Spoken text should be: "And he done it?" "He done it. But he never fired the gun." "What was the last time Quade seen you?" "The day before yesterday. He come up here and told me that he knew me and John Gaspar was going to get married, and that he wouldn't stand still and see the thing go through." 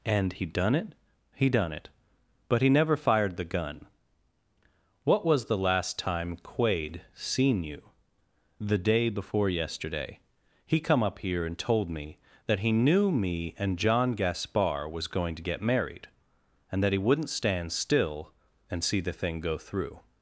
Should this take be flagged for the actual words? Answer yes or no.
no